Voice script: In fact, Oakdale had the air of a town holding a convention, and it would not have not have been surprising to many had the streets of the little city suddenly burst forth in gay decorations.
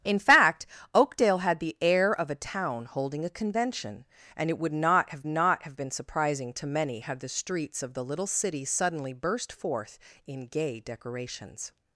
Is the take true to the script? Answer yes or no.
yes